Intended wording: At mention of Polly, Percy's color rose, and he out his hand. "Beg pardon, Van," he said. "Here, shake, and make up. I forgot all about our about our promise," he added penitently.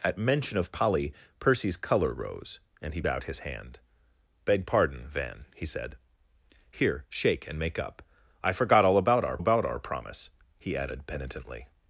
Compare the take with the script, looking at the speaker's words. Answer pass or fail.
pass